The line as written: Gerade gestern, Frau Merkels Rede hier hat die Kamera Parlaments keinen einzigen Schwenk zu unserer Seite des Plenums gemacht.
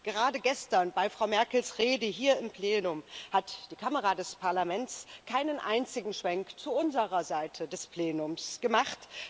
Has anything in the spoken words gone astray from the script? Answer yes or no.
yes